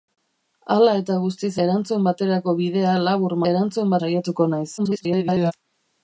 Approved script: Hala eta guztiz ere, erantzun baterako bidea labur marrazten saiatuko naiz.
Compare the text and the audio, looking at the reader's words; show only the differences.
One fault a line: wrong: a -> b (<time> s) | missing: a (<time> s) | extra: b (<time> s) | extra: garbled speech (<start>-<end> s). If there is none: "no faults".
missing: ere (1.5 s)
wrong: marrazten -> erantzun (3.5 s)
extra: garbled speech (4.8-5.5 s)